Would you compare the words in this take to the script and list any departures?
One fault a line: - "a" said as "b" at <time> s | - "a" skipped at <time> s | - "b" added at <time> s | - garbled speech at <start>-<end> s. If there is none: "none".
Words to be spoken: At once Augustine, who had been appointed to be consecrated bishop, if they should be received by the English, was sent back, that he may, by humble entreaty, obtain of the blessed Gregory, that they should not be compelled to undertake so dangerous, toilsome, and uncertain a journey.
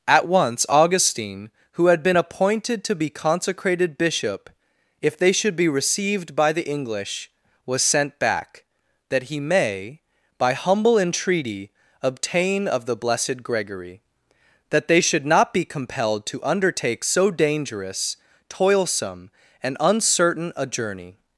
none